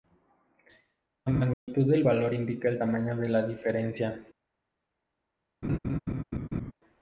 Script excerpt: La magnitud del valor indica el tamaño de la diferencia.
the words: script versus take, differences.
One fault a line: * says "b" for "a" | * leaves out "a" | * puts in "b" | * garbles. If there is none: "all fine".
all fine